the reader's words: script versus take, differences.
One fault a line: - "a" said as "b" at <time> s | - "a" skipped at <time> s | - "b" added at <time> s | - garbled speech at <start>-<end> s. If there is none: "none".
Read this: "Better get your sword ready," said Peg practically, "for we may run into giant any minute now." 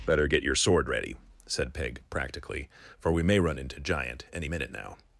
none